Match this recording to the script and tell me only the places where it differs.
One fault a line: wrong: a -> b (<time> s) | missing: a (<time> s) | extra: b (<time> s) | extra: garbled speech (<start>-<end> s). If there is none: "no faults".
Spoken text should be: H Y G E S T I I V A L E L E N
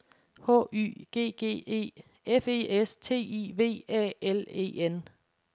extra: G (1.3 s)
extra: F E (2.2 s)
missing: I (3.5 s)
missing: L E (4.8 s)